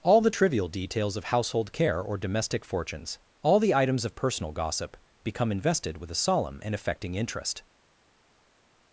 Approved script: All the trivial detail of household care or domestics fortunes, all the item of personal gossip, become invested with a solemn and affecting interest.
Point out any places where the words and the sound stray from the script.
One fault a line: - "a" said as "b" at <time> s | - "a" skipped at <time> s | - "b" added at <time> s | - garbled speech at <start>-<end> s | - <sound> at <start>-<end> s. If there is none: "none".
- "detail" said as "details" at 0.7 s
- "domestics" said as "domestic" at 2.2 s
- "item" said as "items" at 3.7 s